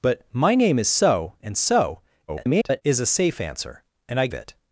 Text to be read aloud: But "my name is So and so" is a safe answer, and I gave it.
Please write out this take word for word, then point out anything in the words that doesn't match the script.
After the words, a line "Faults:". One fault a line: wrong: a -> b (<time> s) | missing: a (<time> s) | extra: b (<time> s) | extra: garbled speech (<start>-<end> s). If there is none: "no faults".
But "my name is So and so" [garbled] is a safe answer, and I it.
Faults:
extra: garbled speech (2.3-2.8 s)
missing: gave (4.3 s)